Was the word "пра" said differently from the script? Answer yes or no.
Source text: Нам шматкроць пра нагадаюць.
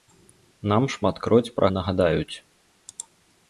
no